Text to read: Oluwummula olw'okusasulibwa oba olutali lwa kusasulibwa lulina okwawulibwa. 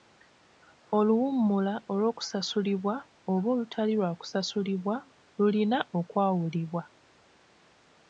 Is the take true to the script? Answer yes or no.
yes